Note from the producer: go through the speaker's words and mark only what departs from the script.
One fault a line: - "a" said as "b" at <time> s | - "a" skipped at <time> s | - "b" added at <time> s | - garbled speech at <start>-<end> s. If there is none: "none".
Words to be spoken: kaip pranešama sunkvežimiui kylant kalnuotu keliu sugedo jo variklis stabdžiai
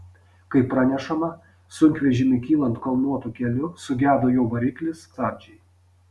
none